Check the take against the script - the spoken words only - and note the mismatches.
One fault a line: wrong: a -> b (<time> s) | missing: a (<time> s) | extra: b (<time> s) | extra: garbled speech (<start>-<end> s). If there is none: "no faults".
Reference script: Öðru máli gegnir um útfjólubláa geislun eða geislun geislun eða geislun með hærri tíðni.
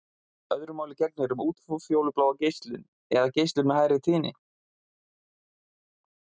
missing: geislun eða geislun (3.7 s)